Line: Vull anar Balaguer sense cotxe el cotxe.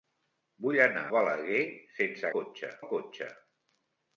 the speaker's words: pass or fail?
pass